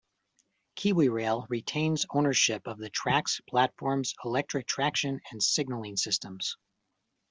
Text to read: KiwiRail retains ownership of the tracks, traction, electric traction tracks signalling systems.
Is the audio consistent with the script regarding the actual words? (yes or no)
no